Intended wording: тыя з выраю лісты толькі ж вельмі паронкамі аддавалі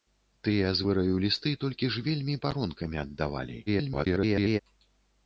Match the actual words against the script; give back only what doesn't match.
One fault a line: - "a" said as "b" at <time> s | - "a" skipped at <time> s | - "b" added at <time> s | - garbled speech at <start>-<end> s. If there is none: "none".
- garbled speech at 3.7-4.6 s